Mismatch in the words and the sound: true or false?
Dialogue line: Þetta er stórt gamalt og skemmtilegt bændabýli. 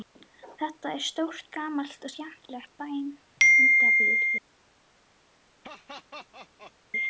true